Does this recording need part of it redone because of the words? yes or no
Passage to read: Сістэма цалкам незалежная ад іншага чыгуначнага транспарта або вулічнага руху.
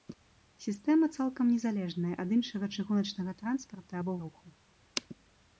yes